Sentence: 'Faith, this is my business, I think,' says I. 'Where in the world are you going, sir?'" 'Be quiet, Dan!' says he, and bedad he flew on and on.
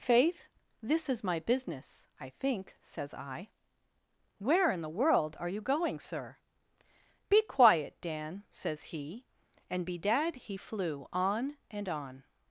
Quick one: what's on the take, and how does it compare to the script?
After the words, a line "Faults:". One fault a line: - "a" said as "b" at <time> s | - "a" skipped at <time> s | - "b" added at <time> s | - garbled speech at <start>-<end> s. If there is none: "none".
'Faith, this is my business, I think,' says I. 'Where in the world are you going, sir?'" 'Be quiet, Dan!' says he, and bedad he flew on and on.
Faults:
none